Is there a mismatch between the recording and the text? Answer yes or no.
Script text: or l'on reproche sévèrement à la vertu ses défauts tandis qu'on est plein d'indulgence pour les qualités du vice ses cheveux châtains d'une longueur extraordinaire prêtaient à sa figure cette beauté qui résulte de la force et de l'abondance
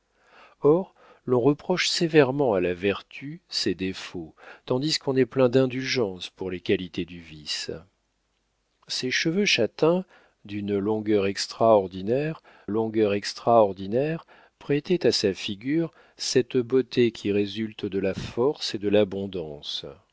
yes